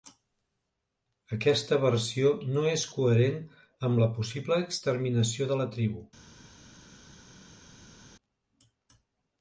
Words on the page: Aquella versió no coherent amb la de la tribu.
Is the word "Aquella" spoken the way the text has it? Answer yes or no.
no